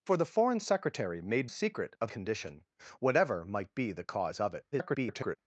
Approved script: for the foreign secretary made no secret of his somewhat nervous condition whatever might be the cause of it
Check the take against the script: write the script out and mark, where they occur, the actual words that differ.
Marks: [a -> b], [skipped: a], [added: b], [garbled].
for the foreign secretary made [skipped: no] secret of [skipped: his somewhat nervous] condition whatever might be the cause of it [garbled]